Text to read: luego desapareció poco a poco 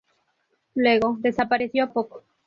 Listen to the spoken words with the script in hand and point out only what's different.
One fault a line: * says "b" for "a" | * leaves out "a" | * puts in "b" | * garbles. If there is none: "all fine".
* leaves out "poco"